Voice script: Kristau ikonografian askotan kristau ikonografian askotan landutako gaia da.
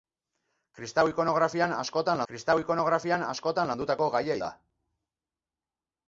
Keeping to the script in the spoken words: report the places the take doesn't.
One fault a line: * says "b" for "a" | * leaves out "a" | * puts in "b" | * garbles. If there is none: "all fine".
all fine